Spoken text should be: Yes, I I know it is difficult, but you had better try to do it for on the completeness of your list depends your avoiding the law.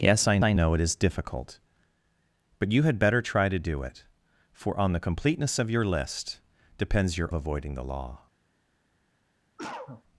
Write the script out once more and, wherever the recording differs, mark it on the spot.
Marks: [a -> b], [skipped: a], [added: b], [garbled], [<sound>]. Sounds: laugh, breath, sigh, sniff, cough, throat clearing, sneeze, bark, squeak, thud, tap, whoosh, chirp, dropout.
Yes, I I know it is difficult, but you had better try to do it for on the completeness of your list depends your avoiding the law. [cough]